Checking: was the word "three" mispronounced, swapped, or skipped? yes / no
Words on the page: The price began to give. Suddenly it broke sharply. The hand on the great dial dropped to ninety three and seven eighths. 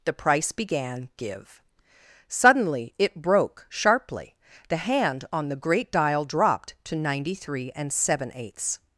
no